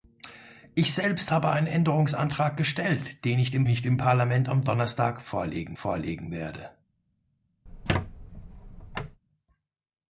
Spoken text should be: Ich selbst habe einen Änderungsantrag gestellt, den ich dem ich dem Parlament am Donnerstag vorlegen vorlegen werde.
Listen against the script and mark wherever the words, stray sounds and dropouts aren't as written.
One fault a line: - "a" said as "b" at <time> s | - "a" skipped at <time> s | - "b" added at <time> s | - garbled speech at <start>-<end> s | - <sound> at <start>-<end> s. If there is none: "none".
- squeak at 7.7-9.2 s